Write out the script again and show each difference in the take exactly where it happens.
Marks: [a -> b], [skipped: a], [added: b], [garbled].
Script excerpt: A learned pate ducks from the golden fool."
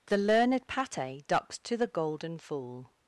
[A -> The] learned pate ducks [from -> to] the golden fool."